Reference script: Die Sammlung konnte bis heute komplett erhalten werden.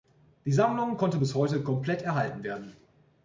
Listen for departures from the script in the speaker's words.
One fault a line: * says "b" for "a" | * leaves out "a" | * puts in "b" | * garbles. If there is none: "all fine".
all fine